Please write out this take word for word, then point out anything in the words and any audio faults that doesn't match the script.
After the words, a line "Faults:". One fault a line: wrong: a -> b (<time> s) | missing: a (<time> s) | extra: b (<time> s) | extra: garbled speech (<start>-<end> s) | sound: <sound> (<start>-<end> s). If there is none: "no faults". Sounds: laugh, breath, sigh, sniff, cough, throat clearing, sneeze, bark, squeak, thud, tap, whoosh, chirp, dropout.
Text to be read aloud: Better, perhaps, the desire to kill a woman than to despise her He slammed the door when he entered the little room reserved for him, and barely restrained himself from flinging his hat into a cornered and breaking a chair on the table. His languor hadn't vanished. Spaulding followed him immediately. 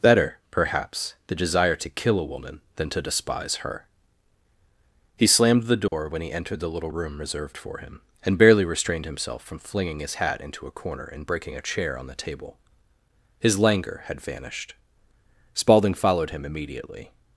Better, perhaps, the desire to kill a woman than to despise her He slammed the door when he entered the little room reserved for him, and barely restrained himself from flinging his hat into a corner and breaking a chair on the table. His languor had vanished. Spaulding followed him immediately.
Faults:
sound: dropout (5.9-5.9 s)
wrong: cornered -> corner (10.8 s)
wrong: hadn't -> had (14.1 s)